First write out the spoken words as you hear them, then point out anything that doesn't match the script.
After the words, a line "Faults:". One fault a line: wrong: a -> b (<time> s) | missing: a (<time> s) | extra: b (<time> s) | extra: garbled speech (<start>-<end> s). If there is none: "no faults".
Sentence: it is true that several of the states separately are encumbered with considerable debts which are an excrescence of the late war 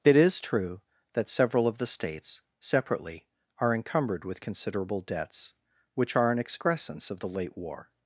it is true that several of the states separately are encumbered with considerable debts which are an excrescence of the late war
Faults:
no faults